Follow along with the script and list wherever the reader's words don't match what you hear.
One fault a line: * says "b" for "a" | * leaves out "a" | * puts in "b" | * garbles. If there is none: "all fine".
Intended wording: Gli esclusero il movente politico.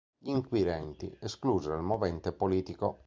* puts in "inquirenti"